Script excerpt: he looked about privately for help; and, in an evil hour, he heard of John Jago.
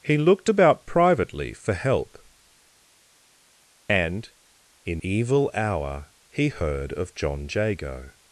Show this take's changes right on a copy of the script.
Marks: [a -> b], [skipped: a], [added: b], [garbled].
he looked about privately for help; and, in [skipped: an] evil hour, he heard of John Jago.